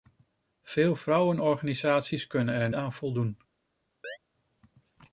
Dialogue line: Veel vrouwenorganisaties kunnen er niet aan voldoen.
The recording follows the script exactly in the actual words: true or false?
false